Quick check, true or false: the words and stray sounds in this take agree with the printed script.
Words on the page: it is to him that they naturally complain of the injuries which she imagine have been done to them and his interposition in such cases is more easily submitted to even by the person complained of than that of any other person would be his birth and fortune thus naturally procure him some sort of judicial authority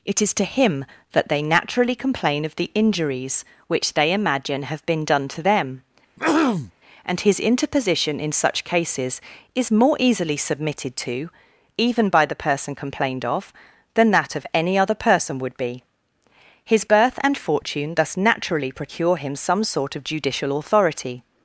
false